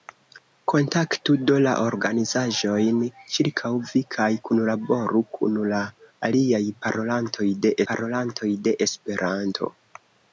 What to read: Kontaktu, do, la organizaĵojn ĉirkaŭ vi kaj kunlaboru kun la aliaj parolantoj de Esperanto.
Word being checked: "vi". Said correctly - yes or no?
yes